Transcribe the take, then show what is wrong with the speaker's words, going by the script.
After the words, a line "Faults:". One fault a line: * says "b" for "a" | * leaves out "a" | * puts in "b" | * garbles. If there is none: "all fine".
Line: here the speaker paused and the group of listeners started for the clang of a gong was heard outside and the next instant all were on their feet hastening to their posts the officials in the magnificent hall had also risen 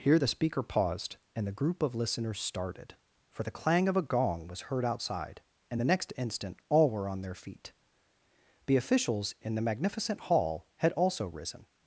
here the speaker paused and the group of listeners started for the clang of a gong was heard outside and the next instant all were on their feet the officials in the magnificent hall had also risen
Faults:
* leaves out "hastening to their posts"